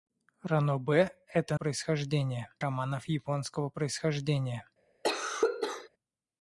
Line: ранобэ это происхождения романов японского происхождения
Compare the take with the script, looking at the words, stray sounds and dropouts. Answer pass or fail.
fail